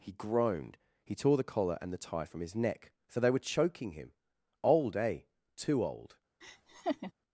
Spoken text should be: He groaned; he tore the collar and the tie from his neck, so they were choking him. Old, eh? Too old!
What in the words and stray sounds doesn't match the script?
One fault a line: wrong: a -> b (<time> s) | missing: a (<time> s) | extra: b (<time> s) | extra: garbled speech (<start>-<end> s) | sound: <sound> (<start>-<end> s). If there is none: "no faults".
sound: laugh (6.4-7.1 s)